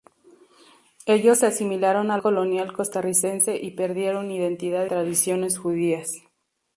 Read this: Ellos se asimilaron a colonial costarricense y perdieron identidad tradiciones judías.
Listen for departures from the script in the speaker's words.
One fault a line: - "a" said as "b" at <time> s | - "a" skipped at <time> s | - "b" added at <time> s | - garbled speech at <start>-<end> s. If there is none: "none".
none